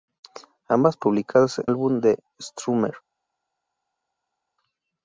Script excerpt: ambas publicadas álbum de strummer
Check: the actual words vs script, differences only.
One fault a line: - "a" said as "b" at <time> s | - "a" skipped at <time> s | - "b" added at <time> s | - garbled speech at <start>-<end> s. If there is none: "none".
none